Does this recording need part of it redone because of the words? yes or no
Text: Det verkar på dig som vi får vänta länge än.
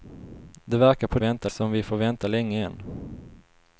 yes